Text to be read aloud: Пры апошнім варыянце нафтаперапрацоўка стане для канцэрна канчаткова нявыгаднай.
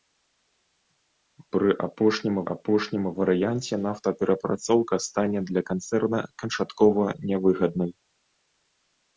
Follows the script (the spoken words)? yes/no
no